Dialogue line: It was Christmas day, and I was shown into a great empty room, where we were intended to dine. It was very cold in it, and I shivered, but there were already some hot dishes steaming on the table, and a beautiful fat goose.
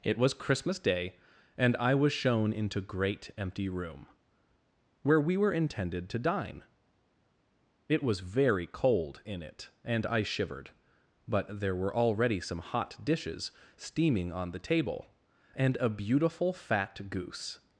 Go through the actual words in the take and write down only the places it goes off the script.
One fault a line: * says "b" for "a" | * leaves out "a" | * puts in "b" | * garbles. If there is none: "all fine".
* leaves out "a"